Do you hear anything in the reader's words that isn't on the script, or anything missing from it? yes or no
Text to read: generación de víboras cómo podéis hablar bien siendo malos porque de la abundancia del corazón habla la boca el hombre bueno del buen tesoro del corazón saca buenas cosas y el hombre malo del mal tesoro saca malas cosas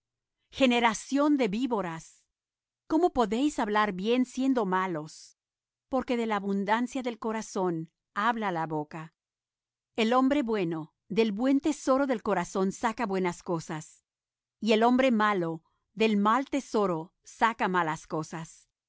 no